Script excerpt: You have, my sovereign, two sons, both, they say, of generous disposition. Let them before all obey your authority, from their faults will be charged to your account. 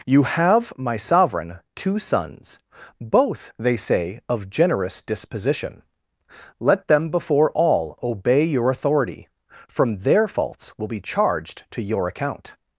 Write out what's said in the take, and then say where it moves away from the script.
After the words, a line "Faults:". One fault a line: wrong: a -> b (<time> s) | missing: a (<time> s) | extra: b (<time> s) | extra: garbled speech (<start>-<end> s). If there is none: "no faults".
You have, my sovereign, two sons, both, they say, of generous disposition. Let them before all obey your authority, from their faults will be charged to your account.
Faults:
no faults